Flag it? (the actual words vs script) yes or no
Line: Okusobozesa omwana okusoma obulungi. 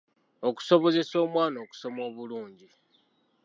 no